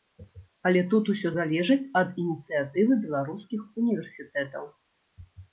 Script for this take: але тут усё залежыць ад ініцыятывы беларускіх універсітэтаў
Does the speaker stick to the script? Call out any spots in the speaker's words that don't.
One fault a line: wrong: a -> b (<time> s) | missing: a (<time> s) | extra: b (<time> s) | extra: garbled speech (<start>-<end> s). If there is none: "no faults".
no faults